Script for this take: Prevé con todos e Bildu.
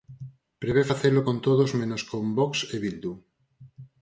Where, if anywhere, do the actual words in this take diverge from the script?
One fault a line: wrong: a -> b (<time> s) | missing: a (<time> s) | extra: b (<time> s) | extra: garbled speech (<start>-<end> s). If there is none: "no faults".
extra: facelo (0.9 s)
extra: menos con Vox (1.8 s)